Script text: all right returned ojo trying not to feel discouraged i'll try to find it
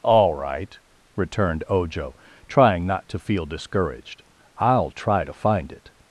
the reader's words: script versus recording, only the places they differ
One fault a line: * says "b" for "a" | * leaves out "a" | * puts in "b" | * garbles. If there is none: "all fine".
all fine